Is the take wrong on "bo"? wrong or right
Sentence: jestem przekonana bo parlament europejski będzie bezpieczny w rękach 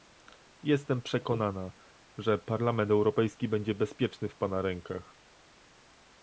wrong